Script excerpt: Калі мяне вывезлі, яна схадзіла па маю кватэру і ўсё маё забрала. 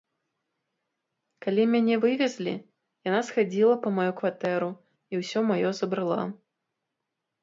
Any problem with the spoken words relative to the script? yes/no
no